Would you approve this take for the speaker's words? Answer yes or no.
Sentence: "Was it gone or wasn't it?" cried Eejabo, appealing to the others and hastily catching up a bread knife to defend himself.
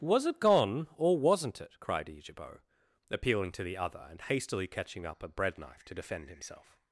no